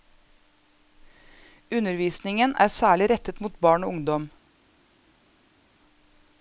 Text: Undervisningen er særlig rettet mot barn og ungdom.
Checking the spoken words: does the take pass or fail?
pass